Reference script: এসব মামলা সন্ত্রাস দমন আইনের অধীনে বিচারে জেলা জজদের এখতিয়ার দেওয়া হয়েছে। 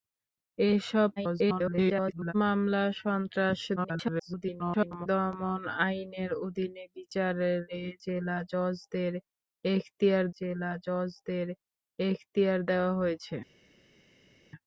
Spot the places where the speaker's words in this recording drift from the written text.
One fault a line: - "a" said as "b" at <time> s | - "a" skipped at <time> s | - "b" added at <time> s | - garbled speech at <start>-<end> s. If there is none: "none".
- garbled speech at 1.2-2.3 s
- garbled speech at 3.8-5.1 s
- "জেলা জজদের এখতিয়ার" added at 10.4 s